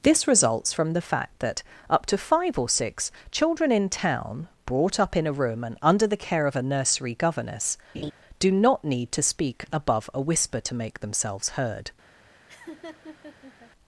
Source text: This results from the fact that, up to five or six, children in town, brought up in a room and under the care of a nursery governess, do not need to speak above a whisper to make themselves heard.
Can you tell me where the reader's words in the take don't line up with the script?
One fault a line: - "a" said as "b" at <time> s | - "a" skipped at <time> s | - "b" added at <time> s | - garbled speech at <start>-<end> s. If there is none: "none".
none